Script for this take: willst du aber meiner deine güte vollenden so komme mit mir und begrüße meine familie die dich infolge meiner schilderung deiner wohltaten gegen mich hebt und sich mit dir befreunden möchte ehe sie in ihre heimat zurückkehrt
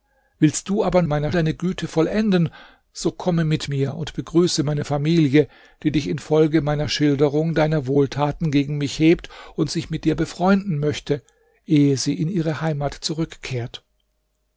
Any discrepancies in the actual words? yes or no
no